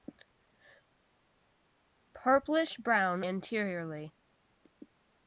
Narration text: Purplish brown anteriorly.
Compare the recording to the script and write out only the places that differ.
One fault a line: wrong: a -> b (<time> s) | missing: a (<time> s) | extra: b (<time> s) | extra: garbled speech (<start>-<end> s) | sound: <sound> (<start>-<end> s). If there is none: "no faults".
no faults